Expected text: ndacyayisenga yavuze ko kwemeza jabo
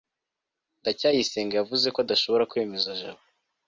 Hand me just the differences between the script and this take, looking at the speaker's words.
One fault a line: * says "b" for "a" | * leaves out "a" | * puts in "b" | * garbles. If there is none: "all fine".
* puts in "adashobora"